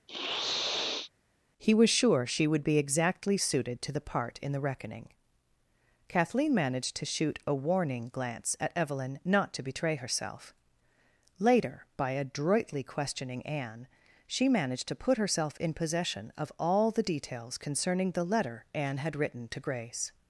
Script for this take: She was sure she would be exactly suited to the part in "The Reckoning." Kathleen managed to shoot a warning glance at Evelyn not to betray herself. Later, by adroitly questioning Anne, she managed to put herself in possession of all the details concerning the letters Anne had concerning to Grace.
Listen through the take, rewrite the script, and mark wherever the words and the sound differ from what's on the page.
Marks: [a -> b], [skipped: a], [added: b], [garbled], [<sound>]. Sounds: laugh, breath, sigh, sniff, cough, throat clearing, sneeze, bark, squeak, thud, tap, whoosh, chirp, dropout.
[sniff] [She -> He] was sure she would be exactly suited to the part in "The Reckoning." Kathleen managed to shoot a warning glance at Evelyn not to betray herself. Later, by adroitly questioning Anne, she managed to put herself in possession of all the details concerning the [letters -> letter] Anne had [concerning -> written] to Grace.